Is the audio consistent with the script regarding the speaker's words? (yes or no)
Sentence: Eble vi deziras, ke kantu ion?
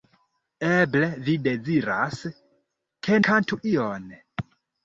yes